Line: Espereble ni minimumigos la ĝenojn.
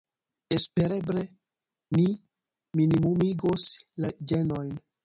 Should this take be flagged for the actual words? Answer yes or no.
no